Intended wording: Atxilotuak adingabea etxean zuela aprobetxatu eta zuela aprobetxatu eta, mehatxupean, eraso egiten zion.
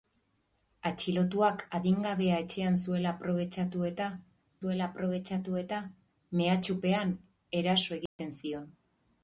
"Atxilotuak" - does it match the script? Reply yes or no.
yes